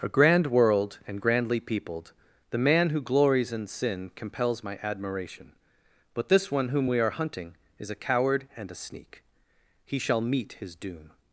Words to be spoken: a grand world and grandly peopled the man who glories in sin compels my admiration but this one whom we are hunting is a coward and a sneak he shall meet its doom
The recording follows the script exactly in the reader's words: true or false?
false